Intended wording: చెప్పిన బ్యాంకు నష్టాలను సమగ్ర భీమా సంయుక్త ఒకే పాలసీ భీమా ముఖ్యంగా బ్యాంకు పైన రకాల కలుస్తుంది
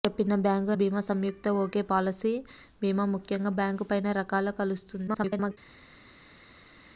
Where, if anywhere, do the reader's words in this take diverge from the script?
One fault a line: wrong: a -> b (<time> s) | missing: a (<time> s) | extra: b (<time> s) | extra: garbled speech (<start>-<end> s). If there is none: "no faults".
missing: నష్టాలను సమగ్ర (0.7 s)
extra: garbled speech (5.1-5.6 s)